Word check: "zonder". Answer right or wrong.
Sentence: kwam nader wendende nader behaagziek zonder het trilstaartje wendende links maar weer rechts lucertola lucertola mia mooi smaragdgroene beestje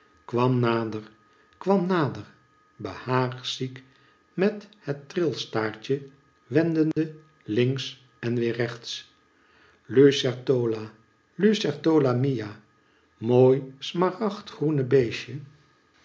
wrong